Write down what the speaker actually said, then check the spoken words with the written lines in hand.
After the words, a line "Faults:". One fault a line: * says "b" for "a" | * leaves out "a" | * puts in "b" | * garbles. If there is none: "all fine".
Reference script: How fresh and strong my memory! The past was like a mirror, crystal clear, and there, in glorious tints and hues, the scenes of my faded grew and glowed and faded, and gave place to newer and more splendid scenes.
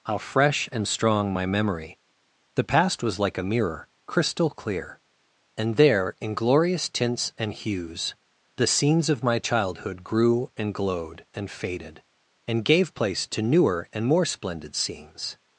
How fresh and strong my memory! The past was like a mirror, crystal clear, and there, in glorious tints and hues, the scenes of my childhood grew and glowed and faded, and gave place to newer and more splendid scenes.
Faults:
* says "childhood" for "faded"